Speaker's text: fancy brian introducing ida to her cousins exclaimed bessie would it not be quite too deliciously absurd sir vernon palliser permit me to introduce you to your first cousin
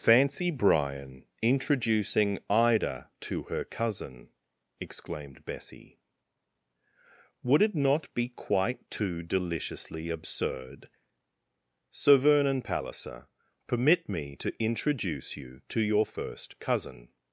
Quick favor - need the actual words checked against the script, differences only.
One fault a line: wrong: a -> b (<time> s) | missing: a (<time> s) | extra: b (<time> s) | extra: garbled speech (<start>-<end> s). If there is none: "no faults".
wrong: cousins -> cousin (3.6 s)